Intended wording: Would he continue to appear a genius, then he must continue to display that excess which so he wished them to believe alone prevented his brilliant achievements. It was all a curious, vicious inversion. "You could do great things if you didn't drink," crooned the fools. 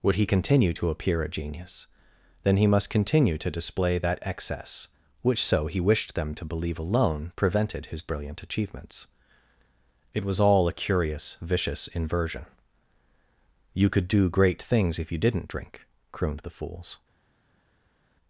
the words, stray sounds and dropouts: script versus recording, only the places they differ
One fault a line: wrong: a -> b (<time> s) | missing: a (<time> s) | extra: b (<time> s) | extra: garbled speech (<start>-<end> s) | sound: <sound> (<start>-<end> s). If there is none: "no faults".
no faults